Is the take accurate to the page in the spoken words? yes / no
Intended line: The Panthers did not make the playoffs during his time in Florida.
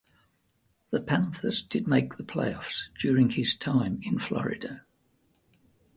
no